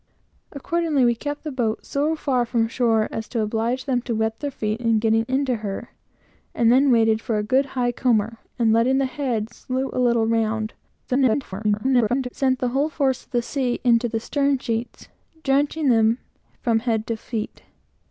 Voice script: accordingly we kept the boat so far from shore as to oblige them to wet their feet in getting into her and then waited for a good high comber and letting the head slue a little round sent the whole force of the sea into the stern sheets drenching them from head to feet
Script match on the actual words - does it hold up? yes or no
no